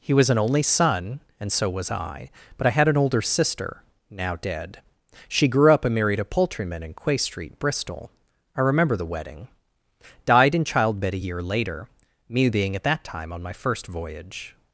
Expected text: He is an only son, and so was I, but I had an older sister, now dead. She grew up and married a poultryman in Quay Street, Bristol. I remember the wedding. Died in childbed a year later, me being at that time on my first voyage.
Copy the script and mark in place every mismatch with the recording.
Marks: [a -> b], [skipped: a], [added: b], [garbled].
He [is -> was] an only son, and so was I, but I had an older sister, now dead. She grew up and married a poultryman in Quay Street, Bristol. I remember the wedding. Died in childbed a year later, me being at that time on my first voyage.